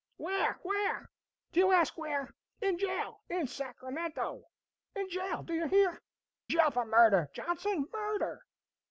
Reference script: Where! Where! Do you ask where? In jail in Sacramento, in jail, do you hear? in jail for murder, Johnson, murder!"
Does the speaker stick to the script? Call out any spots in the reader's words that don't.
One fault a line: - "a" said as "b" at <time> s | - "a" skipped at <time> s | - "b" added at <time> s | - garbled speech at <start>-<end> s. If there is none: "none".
- "in" skipped at 6.0 s